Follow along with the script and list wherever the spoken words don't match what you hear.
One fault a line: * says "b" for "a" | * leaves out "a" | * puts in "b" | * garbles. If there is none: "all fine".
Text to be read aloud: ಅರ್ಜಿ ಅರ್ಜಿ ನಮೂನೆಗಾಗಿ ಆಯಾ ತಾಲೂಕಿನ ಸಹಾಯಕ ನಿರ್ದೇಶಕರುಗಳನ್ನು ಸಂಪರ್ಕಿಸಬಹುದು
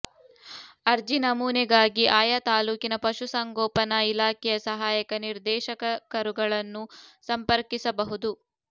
* leaves out "ಅರ್ಜಿ"
* puts in "ಪಶು ಸಂಗೋಪನಾ ಇಲಾಖೆಯ"